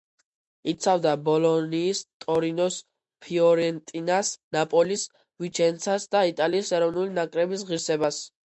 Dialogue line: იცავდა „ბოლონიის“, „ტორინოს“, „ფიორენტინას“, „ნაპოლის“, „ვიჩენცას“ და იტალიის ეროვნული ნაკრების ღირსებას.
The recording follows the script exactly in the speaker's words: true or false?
true